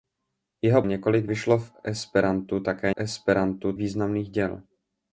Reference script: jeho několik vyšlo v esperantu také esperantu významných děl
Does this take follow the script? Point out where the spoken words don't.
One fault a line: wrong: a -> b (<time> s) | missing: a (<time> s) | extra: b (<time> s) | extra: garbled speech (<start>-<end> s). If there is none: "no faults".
no faults